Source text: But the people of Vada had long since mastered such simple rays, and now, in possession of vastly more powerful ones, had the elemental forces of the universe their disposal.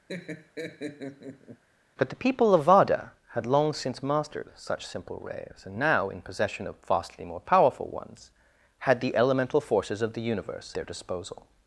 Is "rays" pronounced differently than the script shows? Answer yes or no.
no